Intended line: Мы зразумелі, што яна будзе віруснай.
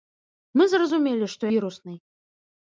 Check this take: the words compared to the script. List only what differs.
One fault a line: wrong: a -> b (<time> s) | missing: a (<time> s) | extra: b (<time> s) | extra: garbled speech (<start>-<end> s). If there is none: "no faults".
missing: яна будзе (1.4 s)